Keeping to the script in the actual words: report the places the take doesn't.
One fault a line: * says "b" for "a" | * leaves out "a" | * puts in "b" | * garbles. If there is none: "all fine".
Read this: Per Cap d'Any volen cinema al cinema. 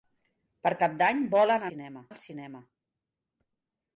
all fine